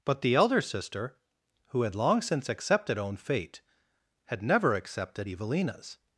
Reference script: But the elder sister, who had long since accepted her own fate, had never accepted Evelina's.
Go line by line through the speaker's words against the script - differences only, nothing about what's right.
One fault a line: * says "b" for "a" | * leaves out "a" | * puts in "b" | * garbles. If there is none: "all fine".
* leaves out "her"